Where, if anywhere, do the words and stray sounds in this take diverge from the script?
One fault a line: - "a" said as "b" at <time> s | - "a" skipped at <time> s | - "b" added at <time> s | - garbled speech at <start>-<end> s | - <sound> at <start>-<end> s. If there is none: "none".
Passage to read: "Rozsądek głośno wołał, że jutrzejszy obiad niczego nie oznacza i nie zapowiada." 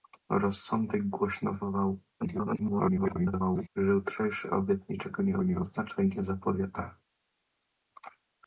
- garbled speech at 2.2-3.7 s
- "nie" added at 5.4 s